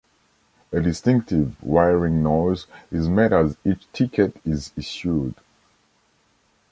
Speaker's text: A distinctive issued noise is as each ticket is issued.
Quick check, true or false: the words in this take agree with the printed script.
false